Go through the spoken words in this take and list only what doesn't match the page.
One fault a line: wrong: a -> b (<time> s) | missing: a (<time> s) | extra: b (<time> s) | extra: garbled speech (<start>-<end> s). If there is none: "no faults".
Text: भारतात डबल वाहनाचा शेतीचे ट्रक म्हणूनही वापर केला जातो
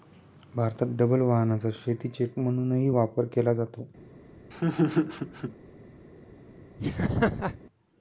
missing: ट्रक (2.2 s)